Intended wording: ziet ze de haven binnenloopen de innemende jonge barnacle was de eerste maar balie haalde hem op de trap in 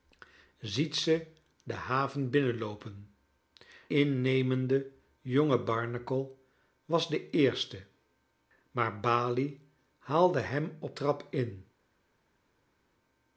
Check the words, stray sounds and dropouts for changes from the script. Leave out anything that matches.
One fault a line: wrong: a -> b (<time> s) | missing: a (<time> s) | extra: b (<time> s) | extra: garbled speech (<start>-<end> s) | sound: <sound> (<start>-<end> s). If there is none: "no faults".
missing: de (3.1 s)
missing: de (11.0 s)